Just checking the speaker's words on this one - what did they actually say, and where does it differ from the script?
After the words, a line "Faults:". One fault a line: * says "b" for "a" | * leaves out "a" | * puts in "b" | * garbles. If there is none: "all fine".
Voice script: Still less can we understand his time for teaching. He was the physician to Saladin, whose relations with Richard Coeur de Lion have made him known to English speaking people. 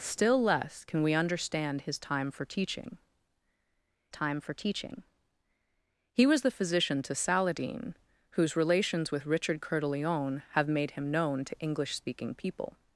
Still less can we understand his time for teaching time for teaching. He was the physician to Saladin, whose relations with Richard Coeur de Lion have made him known to English speaking people.
Faults:
* puts in "time for teaching"